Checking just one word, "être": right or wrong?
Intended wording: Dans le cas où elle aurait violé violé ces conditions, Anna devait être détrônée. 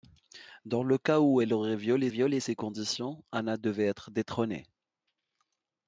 right